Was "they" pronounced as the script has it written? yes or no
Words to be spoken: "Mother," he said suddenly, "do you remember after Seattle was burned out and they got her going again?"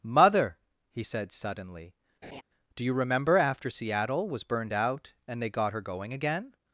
yes